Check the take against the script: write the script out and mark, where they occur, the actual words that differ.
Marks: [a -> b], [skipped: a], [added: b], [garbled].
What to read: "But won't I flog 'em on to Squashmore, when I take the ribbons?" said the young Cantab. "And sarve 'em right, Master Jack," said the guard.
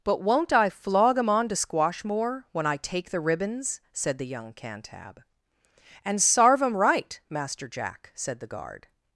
"But won't I flog 'em on to Squashmore, when I take the ribbons?" said the young Cantab. "And sarve 'em right, Master Jack," said the guard.